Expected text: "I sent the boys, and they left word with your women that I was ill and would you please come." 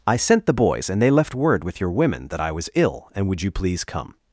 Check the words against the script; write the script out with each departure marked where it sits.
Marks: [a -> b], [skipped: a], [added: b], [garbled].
"I sent the boys, and they left word with your women that I was ill and would you please come."